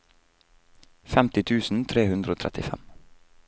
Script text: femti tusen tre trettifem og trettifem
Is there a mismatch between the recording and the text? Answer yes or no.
yes